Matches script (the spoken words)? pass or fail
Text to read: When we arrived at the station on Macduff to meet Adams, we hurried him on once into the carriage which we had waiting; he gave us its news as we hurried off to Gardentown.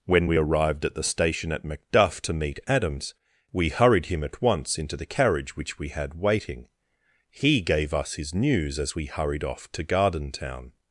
fail